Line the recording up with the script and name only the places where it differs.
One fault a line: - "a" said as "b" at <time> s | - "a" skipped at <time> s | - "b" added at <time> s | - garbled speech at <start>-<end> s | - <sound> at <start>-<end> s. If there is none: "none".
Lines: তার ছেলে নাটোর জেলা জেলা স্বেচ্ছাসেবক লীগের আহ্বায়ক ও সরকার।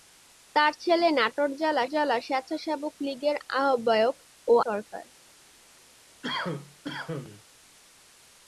- cough at 6.2-7.4 s